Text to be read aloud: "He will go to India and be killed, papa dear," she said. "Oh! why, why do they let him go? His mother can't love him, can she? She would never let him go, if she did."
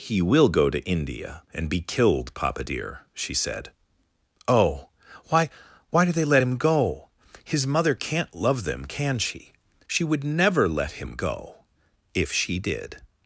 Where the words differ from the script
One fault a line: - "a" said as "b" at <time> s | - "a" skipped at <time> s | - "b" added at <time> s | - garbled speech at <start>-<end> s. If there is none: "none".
- "him" said as "them" at 8.6 s